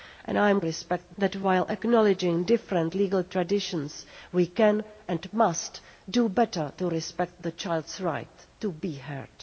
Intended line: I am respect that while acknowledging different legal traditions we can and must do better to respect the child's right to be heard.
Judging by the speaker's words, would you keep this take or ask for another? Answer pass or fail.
pass